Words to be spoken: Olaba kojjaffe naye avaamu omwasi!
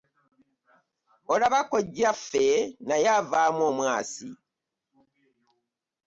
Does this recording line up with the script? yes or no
yes